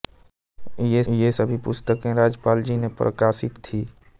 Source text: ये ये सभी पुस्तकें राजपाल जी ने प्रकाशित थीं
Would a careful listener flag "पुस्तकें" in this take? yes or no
no